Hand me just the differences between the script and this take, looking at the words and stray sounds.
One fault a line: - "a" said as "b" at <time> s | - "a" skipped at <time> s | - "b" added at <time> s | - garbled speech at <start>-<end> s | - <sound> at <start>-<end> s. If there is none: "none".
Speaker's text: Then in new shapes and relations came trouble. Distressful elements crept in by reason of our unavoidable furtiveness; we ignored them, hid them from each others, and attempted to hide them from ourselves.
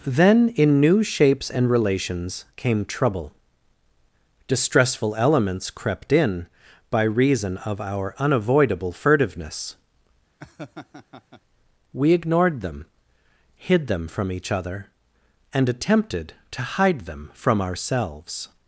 - laugh at 10.4-11.4 s
- "others" said as "other" at 14.5 s